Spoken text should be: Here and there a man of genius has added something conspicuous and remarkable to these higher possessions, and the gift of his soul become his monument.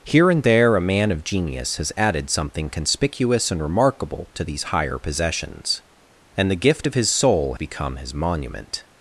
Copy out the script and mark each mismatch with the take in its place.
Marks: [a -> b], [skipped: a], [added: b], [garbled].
Here and there a man of genius has added something conspicuous and remarkable to these higher possessions, and the gift of his soul become his monument.